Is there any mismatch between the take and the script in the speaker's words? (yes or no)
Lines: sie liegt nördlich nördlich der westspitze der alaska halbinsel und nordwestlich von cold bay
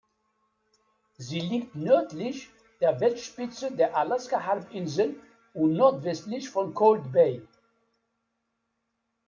yes